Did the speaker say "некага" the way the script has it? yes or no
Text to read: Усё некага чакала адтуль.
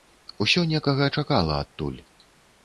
yes